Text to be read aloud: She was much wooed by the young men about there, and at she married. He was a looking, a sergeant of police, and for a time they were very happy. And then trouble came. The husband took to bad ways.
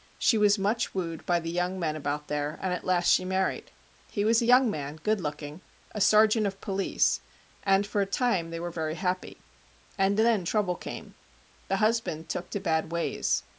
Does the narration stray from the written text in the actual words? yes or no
yes